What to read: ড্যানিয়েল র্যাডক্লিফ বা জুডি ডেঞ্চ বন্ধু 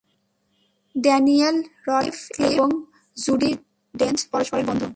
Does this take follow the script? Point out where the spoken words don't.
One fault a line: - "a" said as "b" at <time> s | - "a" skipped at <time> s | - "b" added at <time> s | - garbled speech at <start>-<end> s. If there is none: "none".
- "বা" said as "এবং" at 2.5 s
- "পরস্পরের" added at 4.3 s